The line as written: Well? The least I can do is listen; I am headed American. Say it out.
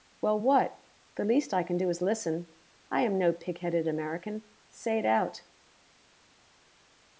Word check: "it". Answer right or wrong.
right